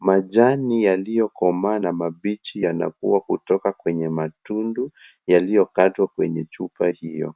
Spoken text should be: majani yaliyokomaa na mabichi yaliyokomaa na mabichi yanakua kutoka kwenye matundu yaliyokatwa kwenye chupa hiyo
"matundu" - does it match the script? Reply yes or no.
yes